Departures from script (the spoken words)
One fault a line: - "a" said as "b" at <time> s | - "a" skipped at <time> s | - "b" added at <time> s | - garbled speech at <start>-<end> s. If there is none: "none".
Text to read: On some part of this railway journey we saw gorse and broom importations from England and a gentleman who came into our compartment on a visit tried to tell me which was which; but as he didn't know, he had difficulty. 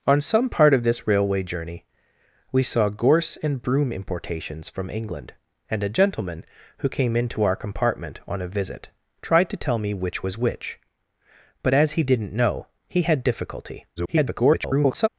- garbled speech at 14.0-15.1 s